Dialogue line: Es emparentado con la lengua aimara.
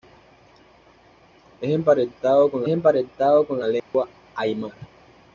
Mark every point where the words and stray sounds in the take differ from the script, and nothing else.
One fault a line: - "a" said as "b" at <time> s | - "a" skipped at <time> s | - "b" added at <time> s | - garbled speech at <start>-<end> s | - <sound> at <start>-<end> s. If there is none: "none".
- "emparentado con" added at 2.7 s
- dropout at 3.8-3.9 s